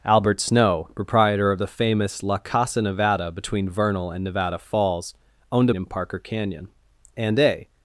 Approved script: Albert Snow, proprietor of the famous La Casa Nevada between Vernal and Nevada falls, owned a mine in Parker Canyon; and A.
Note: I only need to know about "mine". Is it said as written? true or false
false